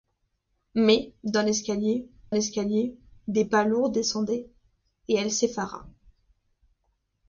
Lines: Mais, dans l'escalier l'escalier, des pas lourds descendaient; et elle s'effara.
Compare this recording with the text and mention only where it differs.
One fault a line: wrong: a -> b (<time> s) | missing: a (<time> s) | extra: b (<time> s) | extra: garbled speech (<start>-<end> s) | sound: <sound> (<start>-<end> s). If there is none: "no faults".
no faults